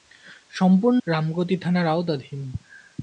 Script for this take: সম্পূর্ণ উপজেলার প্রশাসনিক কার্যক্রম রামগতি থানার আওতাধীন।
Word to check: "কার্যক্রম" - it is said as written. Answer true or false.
false